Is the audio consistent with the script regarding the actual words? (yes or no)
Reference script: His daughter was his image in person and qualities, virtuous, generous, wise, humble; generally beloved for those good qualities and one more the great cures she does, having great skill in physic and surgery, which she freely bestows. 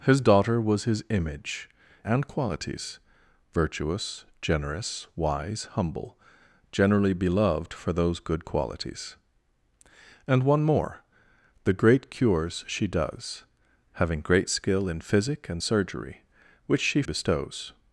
no